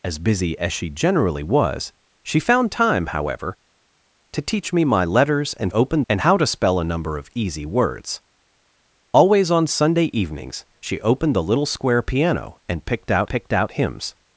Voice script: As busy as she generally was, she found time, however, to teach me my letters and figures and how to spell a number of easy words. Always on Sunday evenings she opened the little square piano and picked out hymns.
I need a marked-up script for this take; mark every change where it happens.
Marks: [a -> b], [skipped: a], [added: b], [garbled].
As busy as she generally was, she found time, however, to teach me my letters and [figures -> opened] and how to spell a number of easy words. Always on Sunday evenings she opened the little square piano and picked out [added: picked out] hymns.